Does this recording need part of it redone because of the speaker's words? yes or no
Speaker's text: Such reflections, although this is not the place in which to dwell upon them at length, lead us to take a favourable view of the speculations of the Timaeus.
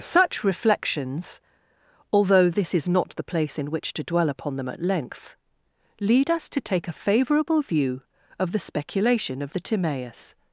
yes